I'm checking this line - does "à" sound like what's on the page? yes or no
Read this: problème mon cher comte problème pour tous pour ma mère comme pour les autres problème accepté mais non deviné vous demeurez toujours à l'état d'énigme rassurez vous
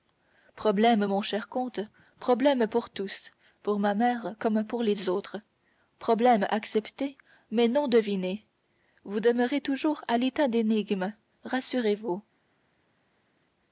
yes